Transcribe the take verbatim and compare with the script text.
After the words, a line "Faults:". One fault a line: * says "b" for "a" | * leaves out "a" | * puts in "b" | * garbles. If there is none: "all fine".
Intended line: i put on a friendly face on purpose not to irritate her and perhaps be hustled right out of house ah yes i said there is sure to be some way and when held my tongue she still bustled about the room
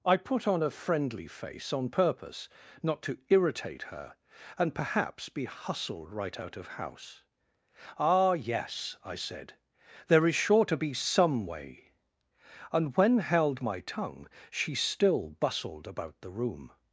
i put on a friendly face on purpose not to irritate her and perhaps be hustled right out of house ah yes i said there is sure to be some way and when held my tongue she still bustled about the room
Faults:
all fine